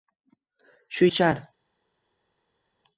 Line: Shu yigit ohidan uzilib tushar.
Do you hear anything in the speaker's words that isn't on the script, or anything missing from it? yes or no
yes